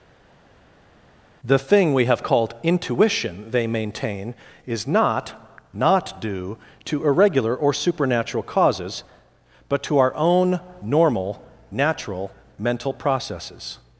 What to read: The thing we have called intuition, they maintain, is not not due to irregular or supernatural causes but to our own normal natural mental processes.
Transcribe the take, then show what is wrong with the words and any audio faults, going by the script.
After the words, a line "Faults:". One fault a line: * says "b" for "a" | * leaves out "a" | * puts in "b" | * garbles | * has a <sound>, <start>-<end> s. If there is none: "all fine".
The thing we have called intuition, they maintain, is not not due to irregular or supernatural causes but to our own normal natural mental processes.
Faults:
all fine